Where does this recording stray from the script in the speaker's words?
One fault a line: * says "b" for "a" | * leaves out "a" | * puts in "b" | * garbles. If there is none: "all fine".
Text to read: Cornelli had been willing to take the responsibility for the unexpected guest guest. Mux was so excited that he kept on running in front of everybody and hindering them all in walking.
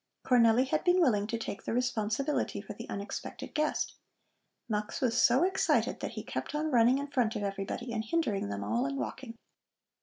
* leaves out "guest"